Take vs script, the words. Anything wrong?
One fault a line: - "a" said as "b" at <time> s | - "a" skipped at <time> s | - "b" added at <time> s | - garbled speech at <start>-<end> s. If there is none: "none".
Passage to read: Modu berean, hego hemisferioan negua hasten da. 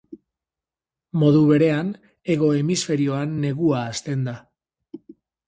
none